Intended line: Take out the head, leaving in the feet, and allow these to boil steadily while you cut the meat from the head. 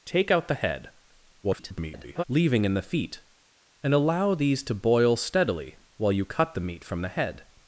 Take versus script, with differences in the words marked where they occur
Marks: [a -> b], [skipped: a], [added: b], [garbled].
Take out the head, [garbled] leaving in the feet, and allow these to boil steadily while you cut the meat from the head.